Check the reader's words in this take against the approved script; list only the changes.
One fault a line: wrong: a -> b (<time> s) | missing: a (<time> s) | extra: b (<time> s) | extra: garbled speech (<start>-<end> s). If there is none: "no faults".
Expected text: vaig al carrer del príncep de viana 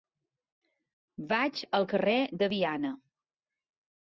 missing: del príncep (2.2 s)